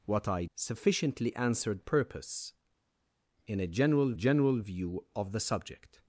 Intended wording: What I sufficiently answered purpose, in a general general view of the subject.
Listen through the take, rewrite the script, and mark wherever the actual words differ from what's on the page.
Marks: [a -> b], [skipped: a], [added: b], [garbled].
What I sufficiently answered purpose, in a general general view of the subject.